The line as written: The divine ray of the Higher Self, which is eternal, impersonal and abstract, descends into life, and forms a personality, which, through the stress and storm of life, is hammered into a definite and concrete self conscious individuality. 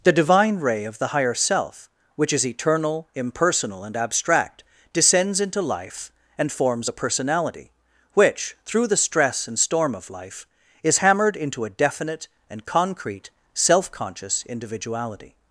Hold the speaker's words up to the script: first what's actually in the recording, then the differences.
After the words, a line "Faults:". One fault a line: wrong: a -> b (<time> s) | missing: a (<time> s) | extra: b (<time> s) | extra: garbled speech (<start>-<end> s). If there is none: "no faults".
The divine ray of the Higher Self, which is eternal, impersonal and abstract, descends into life, and forms a personality, which, through the stress and storm of life, is hammered into a definite and concrete self conscious individuality.
Faults:
no faults